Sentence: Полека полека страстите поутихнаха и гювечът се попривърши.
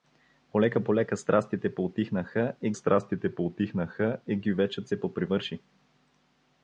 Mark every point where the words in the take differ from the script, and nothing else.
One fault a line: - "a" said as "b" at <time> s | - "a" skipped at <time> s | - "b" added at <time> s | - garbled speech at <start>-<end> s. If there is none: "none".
- "страстите поутихнаха и" added at 2.7 s